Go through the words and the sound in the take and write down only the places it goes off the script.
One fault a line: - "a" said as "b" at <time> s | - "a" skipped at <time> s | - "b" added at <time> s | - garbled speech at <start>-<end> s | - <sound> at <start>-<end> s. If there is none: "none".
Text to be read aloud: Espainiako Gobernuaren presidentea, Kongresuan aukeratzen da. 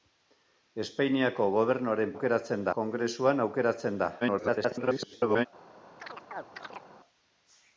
- "presidentea" said as "aukeratzen" at 2.1 s
- garbled speech at 4.2-5.5 s
- chirp at 6.0-6.9 s